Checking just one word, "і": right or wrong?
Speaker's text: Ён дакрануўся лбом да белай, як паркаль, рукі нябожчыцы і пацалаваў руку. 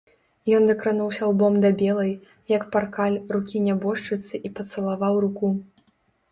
right